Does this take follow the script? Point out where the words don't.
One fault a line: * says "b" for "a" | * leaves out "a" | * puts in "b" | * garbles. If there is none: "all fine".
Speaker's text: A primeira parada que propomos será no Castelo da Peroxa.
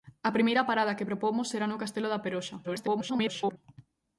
* garbles